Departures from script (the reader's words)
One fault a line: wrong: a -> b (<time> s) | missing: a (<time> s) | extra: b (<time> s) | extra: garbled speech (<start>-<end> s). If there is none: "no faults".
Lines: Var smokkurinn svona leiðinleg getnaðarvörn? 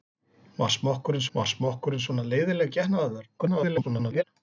extra: var smokkurinn (1.4 s)
extra: garbled speech (3.4-4.2 s)